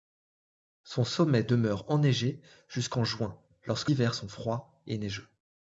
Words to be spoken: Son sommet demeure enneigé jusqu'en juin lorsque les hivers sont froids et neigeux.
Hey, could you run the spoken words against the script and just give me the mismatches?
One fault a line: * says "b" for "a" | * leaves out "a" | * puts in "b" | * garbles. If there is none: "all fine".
* leaves out "les"